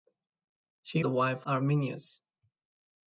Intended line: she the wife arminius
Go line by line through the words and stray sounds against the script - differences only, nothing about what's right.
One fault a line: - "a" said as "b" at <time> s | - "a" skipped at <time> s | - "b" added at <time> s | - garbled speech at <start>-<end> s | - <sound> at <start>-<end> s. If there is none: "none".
none